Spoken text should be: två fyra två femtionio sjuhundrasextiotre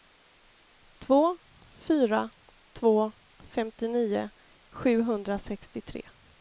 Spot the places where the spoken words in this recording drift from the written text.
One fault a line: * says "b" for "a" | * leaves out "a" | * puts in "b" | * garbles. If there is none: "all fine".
all fine